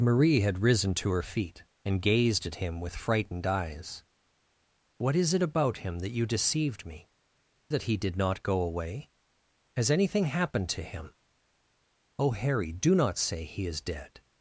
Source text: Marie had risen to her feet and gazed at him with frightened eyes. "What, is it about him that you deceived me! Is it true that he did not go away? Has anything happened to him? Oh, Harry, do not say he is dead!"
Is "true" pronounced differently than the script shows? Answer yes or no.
yes